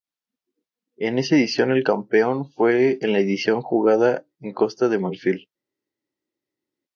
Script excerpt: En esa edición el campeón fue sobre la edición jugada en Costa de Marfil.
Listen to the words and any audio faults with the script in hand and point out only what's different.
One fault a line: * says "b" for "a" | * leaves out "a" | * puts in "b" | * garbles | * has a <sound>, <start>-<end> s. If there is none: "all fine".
* says "en" for "sobre"